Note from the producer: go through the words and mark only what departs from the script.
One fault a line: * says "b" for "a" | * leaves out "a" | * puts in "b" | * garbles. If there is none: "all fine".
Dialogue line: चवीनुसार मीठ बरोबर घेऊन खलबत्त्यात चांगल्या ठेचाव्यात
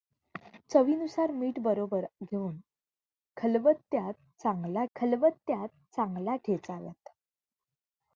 * puts in "खलबत्त्यात चांगल्या"